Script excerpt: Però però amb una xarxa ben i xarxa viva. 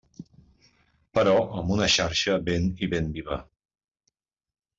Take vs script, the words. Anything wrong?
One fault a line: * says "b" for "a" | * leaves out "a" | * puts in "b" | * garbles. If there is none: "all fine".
* leaves out "però"
* says "ben" for "xarxa"